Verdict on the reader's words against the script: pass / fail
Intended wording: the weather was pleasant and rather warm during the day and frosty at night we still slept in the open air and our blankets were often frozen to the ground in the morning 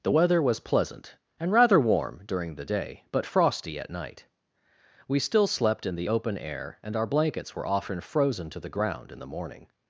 fail